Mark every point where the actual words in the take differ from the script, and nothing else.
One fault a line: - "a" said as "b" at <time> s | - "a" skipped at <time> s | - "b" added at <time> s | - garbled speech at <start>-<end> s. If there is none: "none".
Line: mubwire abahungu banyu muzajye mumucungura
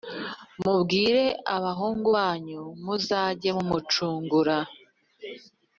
none